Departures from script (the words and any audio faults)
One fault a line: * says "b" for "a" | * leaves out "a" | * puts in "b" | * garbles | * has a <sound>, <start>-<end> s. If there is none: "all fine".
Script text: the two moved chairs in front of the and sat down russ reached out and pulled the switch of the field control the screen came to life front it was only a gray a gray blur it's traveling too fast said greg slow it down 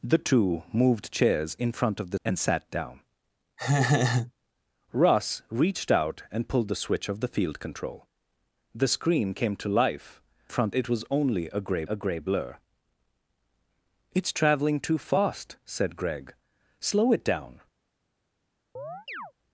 * has a laugh, 3.6-4.3 s
* has a chirp, 18.8-19.3 s